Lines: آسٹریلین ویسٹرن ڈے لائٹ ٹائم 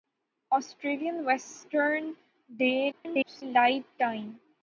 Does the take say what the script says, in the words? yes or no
no